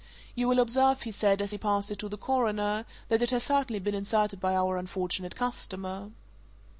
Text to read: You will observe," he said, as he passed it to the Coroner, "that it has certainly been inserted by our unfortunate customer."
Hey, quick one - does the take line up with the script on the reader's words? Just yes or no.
yes